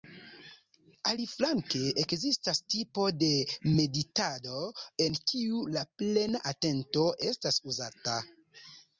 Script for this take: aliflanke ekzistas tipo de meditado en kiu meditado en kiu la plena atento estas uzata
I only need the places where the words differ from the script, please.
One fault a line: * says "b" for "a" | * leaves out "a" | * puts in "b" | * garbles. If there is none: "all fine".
* leaves out "meditado en kiu"